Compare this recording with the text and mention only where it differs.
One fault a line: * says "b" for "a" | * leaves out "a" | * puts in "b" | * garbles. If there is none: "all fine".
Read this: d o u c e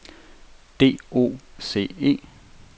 * leaves out "u"